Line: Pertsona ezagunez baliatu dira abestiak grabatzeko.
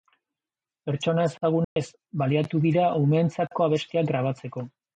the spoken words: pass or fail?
fail